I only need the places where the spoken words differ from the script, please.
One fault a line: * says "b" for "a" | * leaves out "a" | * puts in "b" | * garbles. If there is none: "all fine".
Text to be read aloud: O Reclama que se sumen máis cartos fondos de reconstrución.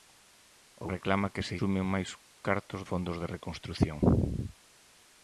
all fine